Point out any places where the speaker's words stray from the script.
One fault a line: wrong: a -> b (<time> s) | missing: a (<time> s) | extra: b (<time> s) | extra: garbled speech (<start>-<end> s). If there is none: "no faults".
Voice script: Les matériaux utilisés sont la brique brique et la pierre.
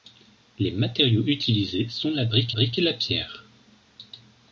no faults